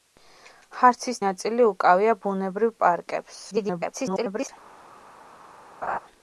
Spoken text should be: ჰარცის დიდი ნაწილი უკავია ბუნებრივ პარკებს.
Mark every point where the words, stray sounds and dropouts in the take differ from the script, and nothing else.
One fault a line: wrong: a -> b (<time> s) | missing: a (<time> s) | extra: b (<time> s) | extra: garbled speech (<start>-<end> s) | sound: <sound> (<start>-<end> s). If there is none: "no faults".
missing: დიდი (1.2 s)
extra: garbled speech (3.5-4.5 s)
sound: laugh (5.8-6.0 s)